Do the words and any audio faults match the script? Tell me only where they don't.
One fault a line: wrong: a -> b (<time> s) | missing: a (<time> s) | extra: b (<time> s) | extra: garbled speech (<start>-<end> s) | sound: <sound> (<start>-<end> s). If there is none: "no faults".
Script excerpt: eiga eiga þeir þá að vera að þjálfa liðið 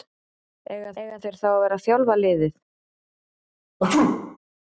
sound: sneeze (3.8-4.4 s)